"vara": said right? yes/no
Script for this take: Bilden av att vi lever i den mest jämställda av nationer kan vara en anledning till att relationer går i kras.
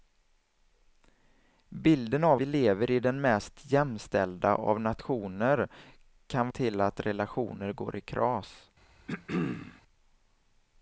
no